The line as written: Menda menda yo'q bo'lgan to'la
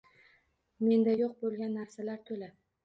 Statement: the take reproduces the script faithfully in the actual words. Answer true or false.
false